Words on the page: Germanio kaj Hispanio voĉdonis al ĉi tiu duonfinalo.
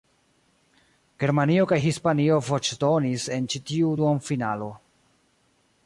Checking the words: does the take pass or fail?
fail